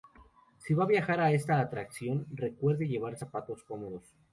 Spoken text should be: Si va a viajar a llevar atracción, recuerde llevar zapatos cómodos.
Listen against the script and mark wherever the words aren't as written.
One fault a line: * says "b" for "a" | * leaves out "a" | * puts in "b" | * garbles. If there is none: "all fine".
* says "esta" for "llevar"